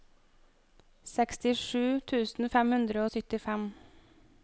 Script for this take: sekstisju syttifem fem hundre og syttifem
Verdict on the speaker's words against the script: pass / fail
fail